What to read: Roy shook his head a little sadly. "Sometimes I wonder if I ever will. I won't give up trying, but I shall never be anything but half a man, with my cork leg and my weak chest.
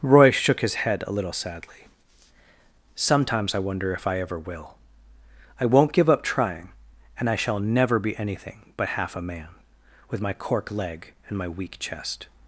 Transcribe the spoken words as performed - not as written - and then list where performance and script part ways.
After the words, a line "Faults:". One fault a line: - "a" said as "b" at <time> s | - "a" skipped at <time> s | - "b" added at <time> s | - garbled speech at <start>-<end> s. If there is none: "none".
Roy shook his head a little sadly. "Sometimes I wonder if I ever will. I won't give up trying, and I shall never be anything but half a man, with my cork leg and my weak chest.
Faults:
- "but" said as "and" at 7.2 s